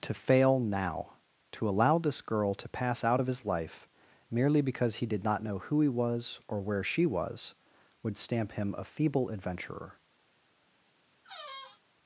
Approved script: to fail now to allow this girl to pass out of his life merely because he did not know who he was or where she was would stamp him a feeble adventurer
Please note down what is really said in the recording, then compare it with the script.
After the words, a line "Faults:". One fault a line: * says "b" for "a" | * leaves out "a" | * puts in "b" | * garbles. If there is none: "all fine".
to fail now to allow this girl to pass out of his life merely because he did not know who he was or where she was would stamp him a feeble adventurer
Faults:
all fine